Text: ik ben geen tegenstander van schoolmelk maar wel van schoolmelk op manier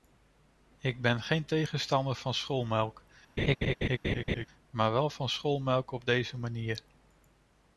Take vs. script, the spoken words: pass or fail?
fail